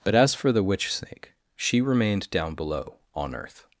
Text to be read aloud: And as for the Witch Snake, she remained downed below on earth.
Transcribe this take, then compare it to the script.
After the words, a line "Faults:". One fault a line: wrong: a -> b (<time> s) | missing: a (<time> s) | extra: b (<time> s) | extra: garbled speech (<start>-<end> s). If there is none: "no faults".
But as for the Witch Snake, she remained down below on earth.
Faults:
wrong: And -> But (0.0 s)
wrong: downed -> down (2.3 s)